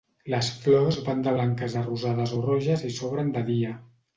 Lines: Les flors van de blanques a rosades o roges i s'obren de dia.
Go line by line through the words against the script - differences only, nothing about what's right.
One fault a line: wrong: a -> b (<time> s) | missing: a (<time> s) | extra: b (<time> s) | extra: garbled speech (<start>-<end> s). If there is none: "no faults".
no faults